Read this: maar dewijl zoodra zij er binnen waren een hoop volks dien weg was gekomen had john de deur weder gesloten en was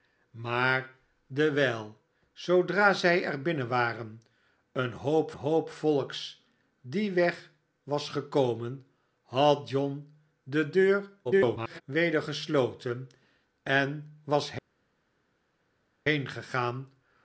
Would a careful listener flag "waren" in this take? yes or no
no